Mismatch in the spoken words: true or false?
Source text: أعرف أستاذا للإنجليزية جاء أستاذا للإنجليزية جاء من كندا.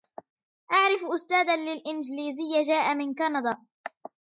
true